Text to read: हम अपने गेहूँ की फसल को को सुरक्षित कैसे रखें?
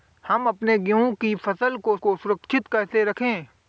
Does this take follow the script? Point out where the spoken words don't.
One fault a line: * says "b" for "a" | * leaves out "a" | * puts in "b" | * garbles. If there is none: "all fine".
all fine